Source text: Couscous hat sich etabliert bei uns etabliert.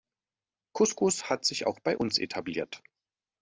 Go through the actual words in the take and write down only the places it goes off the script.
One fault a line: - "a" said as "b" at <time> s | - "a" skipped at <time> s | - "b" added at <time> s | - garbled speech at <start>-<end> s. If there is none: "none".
- "etabliert" said as "auch" at 1.7 s